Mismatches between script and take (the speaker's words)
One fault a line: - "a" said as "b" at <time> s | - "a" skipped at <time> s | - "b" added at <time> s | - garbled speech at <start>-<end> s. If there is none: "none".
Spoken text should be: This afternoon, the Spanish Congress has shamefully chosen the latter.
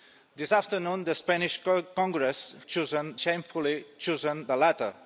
- "has" said as "chosen" at 2.7 s